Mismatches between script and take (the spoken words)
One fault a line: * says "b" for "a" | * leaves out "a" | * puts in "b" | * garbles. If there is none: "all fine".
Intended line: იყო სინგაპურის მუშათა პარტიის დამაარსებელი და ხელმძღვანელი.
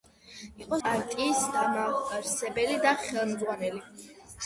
* leaves out "სინგაპურის მუშათა"